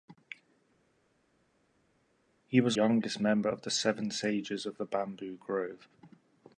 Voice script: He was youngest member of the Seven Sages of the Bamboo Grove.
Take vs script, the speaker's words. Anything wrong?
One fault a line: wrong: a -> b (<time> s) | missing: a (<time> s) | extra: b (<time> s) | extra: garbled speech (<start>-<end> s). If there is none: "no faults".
no faults